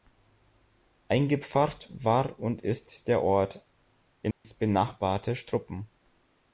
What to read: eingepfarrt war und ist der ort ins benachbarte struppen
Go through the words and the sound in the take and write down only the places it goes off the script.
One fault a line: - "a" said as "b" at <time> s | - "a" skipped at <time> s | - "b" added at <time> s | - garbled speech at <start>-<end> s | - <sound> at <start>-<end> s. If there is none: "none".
- dropout at 4.3-4.4 s